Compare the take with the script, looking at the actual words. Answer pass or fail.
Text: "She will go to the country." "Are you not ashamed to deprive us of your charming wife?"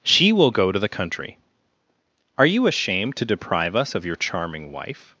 fail